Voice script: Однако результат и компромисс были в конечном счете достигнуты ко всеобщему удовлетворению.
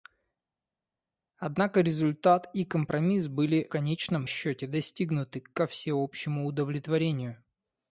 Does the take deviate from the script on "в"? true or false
true